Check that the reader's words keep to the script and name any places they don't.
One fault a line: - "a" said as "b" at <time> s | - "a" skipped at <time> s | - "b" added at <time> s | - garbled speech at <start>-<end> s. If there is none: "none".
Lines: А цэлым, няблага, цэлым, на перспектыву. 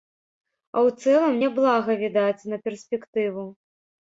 - "ў" added at 0.8 s
- "цэлым" said as "відаць" at 2.0 s